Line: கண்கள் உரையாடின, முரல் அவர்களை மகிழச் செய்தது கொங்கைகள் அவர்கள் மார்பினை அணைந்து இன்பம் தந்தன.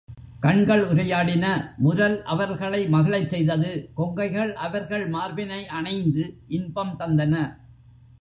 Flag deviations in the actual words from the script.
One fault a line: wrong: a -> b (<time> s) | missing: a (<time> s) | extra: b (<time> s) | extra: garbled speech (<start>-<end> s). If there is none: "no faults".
no faults